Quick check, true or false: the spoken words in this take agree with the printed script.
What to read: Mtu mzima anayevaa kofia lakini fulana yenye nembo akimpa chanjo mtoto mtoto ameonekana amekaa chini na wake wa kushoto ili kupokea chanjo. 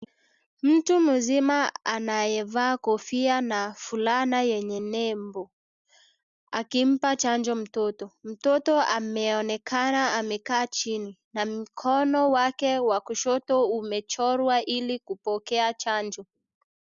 false